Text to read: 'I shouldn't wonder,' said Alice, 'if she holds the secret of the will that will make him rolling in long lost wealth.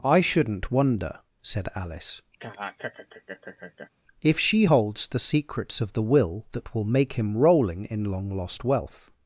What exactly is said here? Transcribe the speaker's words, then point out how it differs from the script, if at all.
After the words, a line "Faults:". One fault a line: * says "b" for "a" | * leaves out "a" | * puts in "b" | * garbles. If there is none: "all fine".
'I shouldn't wonder,' said Alice, 'if she holds the secrets of the will that will make him rolling in long lost wealth.
Faults:
* says "secrets" for "secret"